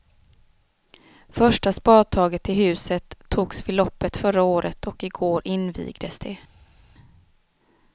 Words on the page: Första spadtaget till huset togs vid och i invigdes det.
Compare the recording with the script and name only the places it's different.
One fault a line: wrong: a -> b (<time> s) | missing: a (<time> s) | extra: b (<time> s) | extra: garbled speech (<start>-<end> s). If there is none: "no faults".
extra: loppet förra året (3.8 s)
extra: går (5.1 s)